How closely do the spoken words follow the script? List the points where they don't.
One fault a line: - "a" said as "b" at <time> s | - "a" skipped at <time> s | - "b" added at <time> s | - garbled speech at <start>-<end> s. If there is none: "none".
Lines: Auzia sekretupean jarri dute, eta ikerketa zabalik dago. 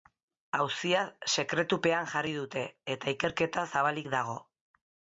none